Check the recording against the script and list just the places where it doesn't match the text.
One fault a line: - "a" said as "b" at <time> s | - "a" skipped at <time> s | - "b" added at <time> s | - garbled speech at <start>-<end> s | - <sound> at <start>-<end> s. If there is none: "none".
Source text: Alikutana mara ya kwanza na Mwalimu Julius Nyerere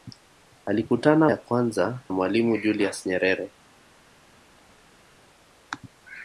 - "mara" skipped at 1.3 s
- "na" skipped at 2.0 s